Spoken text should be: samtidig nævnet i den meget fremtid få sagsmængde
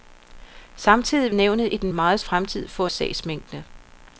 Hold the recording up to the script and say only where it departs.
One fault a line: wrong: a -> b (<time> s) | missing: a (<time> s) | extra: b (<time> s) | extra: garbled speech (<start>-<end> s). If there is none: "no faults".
no faults